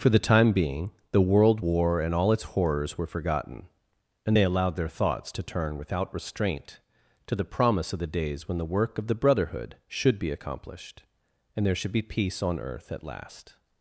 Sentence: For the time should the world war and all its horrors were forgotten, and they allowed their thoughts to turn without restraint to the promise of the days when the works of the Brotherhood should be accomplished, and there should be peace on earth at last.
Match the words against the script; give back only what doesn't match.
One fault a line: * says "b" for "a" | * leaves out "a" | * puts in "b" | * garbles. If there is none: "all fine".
* says "being" for "should"
* says "work" for "works"